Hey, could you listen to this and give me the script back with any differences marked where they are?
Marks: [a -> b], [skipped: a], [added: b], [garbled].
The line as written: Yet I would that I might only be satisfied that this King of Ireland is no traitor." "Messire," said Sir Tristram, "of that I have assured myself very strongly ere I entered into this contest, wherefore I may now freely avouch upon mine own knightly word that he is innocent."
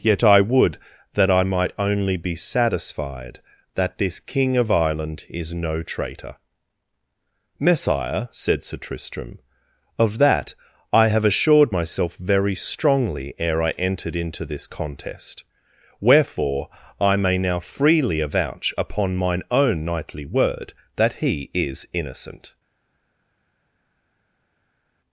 Yet I would that I might only be satisfied that this King of Ireland is no traitor." "Messire," said Sir Tristram, "of that I have assured myself very strongly ere I entered into this contest, wherefore I may now freely avouch upon mine own knightly word that he is innocent."